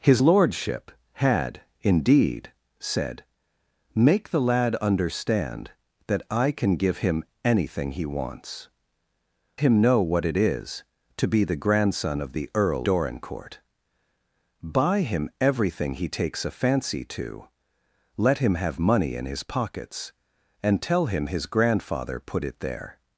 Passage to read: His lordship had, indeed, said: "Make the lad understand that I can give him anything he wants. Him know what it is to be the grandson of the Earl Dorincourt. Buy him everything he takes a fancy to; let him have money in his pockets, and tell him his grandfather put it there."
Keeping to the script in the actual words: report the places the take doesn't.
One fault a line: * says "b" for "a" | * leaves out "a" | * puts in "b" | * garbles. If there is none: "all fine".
all fine